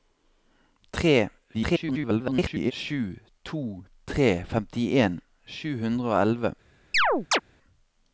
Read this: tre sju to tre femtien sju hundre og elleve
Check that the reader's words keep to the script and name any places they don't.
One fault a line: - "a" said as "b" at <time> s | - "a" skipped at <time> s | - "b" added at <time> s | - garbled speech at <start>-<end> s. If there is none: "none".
- garbled speech at 1.5-2.7 s